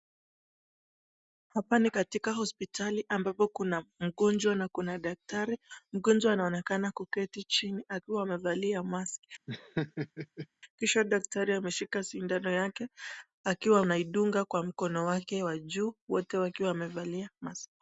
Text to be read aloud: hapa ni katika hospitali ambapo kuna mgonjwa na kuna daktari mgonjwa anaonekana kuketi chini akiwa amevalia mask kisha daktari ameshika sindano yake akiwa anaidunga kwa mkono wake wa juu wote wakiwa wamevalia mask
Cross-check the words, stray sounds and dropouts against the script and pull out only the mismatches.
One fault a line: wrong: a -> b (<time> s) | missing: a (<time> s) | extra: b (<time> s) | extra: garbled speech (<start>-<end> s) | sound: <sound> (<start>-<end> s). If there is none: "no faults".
sound: laugh (9.5-10.5 s)